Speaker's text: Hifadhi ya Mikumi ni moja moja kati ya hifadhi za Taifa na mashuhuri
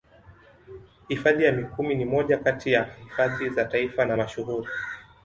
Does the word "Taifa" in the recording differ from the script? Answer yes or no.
no